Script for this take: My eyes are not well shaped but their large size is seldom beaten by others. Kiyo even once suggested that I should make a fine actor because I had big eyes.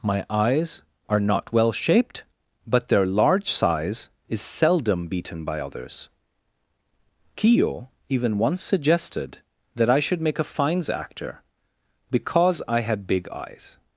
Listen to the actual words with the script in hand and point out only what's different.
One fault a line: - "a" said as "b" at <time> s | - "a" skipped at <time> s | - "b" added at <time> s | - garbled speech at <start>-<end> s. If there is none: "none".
- "fine" said as "fines" at 10.4 s